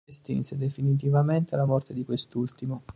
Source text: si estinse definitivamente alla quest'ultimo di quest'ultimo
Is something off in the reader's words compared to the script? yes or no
yes